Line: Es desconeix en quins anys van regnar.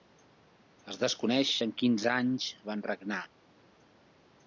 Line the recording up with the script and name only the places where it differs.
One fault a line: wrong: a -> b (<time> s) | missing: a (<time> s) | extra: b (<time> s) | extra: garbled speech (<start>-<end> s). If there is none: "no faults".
no faults